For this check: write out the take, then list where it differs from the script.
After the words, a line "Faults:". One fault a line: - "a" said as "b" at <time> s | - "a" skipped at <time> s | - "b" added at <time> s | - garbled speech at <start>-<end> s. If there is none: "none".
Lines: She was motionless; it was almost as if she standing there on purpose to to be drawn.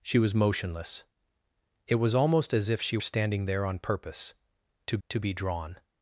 She was motionless; it was almost as if she standing there on purpose to to be drawn.
Faults:
none